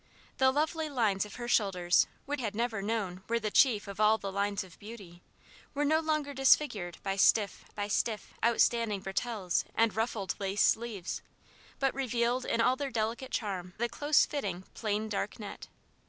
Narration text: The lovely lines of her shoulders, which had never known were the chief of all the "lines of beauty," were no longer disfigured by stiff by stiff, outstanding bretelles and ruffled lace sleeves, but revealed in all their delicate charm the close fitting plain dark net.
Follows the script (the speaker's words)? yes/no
yes